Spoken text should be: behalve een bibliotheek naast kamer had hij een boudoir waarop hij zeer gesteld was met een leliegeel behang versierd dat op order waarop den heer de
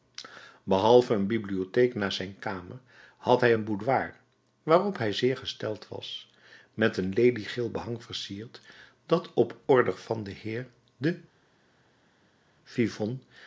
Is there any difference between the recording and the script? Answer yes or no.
yes